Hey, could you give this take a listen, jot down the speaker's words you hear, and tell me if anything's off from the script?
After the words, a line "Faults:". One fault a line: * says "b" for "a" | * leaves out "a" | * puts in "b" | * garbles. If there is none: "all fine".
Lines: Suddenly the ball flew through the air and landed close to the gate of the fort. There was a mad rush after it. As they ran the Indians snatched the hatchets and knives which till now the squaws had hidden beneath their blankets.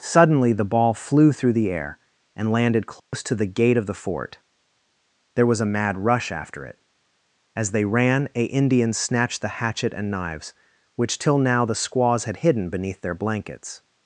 Suddenly the ball flew through the air and landed close to the gate of the fort. There was a mad rush after it. As they ran a Indians snatched the hatchet and knives which till now the squaws had hidden beneath their blankets.
Faults:
* says "a" for "the"
* says "hatchet" for "hatchets"